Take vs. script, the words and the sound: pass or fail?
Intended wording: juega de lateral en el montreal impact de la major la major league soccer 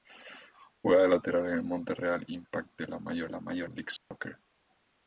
fail